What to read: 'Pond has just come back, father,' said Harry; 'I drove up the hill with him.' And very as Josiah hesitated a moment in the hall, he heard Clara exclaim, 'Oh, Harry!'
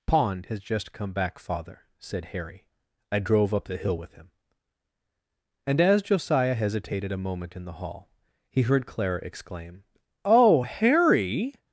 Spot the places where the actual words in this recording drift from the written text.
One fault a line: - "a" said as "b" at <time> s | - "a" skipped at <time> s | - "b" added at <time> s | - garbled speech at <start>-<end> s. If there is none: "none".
- "very" skipped at 5.8 s